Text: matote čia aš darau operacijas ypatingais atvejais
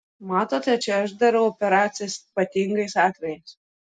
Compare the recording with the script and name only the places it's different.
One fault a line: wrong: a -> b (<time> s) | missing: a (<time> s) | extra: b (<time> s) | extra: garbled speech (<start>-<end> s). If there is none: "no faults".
no faults